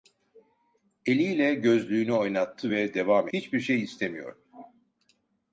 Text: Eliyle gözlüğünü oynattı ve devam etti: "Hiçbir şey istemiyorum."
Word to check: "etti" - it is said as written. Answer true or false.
false